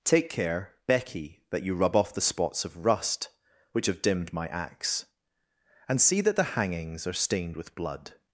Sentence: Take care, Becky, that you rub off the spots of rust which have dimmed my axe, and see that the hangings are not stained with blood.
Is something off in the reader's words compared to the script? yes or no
yes